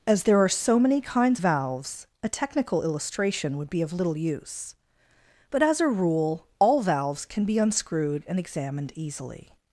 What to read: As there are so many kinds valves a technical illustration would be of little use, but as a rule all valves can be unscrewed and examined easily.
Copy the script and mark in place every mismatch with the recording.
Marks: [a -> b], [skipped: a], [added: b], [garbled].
As there are so many kinds valves a technical illustration would be of little use, but as a rule all valves can be unscrewed and examined easily.